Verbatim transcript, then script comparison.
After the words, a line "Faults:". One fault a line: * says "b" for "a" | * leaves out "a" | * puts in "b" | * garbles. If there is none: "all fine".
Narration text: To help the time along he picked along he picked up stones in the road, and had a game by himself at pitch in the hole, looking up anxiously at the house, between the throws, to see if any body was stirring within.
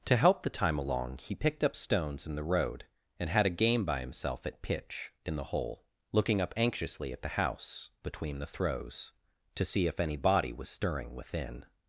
To help the time along he picked up stones in the road, and had a game by himself at pitch in the hole, looking up anxiously at the house, between the throws, to see if any body was stirring within.
Faults:
* leaves out "along he picked"